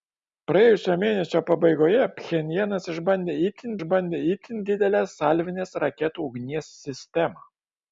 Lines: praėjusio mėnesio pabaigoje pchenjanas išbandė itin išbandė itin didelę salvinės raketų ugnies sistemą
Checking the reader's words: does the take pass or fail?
pass